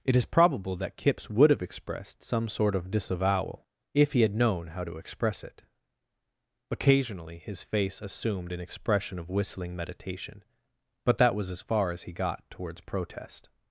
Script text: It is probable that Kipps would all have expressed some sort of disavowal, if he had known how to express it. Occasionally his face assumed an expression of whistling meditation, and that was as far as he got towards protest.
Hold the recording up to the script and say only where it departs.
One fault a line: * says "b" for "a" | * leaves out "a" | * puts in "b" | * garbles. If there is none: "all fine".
* leaves out "all"
* says "but" for "and"